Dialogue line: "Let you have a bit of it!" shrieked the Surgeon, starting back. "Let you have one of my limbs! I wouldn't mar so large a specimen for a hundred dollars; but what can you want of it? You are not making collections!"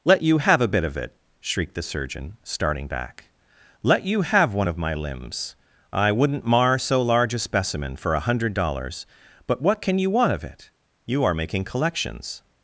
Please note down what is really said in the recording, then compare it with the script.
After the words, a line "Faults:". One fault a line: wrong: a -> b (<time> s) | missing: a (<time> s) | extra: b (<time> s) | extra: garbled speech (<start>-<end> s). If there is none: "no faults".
"Let you have a bit of it!" shrieked the Surgeon, starting back. "Let you have one of my limbs! I wouldn't mar so large a specimen for a hundred dollars; but what can you want of it? You are making collections!"
Faults:
missing: not (11.3 s)